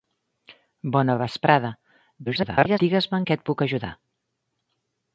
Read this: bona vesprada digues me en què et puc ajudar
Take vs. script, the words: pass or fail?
fail